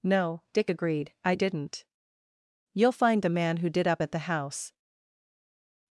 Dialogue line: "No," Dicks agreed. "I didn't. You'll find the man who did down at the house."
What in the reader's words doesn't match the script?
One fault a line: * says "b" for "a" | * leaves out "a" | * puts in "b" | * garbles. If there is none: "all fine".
* says "Dick" for "Dicks"
* says "up" for "down"